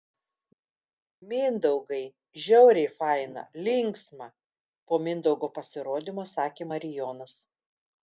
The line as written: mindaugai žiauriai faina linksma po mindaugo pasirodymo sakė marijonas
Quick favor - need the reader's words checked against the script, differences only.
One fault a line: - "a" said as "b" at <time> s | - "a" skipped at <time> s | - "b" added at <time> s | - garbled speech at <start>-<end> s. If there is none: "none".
none